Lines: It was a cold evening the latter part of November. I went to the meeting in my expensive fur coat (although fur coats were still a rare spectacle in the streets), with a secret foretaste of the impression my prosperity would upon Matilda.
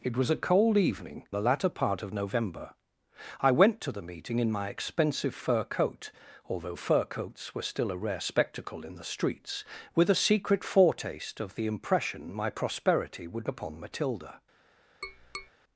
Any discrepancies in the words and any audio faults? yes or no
yes